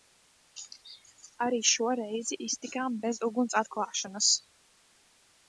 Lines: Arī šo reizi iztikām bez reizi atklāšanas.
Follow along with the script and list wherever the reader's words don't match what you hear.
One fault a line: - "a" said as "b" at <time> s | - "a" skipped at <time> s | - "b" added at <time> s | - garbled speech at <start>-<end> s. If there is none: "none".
- "reizi" said as "uguns" at 3.3 s